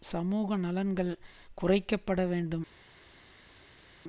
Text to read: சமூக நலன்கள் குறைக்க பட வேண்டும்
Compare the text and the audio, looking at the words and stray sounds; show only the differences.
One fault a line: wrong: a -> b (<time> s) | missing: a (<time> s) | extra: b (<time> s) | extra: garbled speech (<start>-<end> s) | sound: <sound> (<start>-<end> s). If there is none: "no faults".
no faults